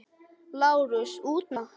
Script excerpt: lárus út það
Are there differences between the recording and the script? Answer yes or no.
no